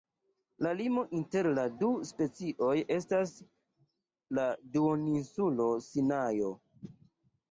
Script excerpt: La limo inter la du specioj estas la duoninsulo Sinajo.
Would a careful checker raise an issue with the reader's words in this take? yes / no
no